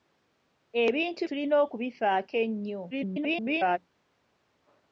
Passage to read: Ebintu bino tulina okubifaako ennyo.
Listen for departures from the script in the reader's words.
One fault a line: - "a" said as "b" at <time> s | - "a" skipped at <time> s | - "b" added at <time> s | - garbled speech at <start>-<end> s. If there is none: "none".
- "bino" skipped at 1.2 s
- garbled speech at 2.9-3.8 s